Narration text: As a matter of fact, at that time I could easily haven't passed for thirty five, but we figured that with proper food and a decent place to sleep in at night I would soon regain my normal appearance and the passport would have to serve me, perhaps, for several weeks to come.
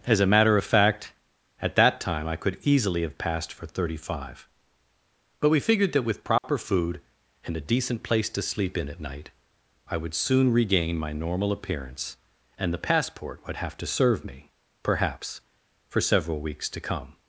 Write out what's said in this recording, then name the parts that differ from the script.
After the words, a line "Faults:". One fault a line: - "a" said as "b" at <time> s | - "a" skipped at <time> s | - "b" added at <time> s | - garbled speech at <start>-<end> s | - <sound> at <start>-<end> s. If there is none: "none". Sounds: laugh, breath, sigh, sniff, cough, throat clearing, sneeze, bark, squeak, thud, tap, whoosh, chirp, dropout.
As a matter of fact, at that time I could easily have passed for thirty five, but we figured that with proper food and a decent place to sleep in at night I would soon regain my normal appearance and the passport would have to serve me, perhaps, for several weeks to come.
Faults:
- "haven't" said as "have" at 3.0 s
- dropout at 6.4-6.4 s